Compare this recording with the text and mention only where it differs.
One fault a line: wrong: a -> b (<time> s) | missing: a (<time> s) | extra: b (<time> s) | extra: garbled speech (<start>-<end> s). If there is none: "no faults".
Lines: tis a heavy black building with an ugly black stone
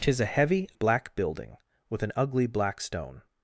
no faults